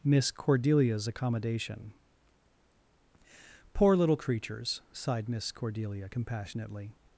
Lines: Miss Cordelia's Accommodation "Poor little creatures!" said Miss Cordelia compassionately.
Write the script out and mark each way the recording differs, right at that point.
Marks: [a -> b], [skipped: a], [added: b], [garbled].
Miss Cordelia's Accommodation "Poor little creatures!" [said -> sighed] Miss Cordelia compassionately.